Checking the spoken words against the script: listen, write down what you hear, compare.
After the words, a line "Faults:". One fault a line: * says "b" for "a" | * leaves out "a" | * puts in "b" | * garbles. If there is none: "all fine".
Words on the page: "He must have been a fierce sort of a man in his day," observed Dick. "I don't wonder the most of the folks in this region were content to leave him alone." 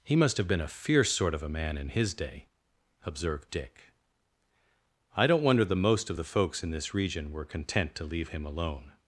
"He must have been a fierce sort of a man in his day," observed Dick. "I don't wonder the most of the folks in this region were content to leave him alone."
Faults:
all fine